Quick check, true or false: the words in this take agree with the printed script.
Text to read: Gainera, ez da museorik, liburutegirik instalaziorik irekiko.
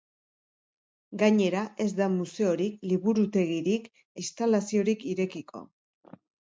true